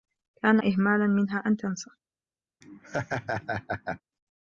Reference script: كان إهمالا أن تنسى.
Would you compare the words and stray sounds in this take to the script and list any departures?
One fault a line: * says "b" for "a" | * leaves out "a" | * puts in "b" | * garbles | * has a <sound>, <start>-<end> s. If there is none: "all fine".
* puts in "منها"
* has a laugh, 2.6-4.0 s